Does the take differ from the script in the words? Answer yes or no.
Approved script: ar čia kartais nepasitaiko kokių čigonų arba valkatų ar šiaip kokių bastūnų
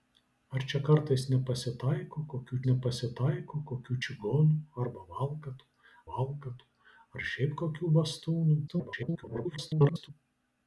yes